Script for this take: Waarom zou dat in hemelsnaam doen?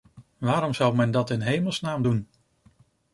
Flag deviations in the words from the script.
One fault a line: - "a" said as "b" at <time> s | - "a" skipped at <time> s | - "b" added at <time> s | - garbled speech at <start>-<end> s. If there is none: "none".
- "men" added at 0.9 s